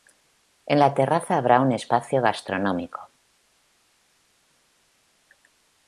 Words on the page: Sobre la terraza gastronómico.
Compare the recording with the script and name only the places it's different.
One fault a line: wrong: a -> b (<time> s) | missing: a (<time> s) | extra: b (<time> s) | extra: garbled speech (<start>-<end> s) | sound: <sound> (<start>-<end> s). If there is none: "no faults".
wrong: Sobre -> En (0.7 s)
extra: habrá un espacio (1.4 s)